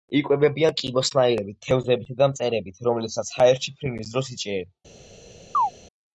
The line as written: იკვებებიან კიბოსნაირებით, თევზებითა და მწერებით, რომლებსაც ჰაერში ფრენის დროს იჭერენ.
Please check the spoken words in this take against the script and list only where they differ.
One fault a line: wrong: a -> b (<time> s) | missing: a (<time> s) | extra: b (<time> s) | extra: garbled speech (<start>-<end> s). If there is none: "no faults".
no faults